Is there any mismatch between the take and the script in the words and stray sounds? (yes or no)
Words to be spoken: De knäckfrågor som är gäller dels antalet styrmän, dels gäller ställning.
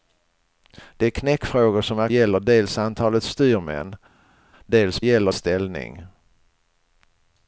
no